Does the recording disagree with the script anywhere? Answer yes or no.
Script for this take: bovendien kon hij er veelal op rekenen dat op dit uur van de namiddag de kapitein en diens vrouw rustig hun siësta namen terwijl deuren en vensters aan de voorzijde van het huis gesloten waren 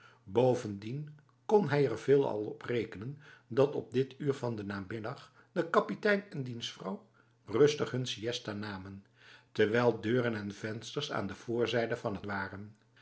yes